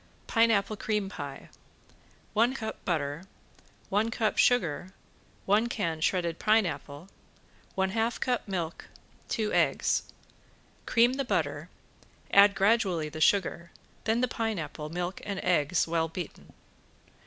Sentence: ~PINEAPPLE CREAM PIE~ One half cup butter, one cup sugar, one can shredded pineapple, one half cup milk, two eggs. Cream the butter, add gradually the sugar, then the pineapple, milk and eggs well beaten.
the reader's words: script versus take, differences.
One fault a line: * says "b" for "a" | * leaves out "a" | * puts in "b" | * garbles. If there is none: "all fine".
* leaves out "half"